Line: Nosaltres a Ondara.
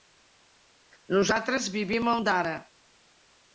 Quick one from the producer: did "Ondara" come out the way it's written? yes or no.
yes